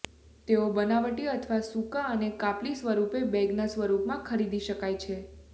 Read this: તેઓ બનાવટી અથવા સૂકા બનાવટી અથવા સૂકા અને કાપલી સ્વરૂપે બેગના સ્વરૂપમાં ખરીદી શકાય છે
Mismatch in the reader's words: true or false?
true